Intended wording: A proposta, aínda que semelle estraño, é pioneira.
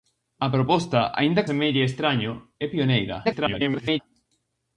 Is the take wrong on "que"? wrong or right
wrong